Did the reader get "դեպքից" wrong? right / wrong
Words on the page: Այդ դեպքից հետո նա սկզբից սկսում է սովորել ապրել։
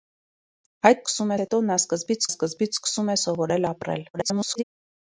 wrong